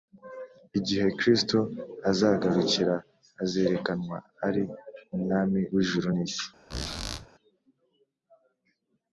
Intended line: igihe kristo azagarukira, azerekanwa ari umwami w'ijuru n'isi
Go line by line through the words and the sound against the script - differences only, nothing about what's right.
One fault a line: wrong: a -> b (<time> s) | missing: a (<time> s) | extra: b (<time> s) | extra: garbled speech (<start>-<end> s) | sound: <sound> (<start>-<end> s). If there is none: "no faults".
sound: squeak (6.7-7.3 s)